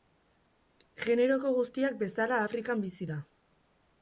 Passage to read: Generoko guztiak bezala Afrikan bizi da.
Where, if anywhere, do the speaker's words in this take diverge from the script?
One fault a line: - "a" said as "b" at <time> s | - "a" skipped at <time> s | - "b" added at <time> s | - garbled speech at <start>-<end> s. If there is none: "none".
none